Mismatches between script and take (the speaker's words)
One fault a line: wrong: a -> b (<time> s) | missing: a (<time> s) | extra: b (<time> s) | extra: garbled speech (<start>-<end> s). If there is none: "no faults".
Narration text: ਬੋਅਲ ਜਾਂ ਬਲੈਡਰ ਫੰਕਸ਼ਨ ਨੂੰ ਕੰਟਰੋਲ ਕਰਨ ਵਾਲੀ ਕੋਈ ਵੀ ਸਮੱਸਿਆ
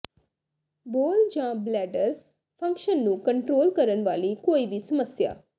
no faults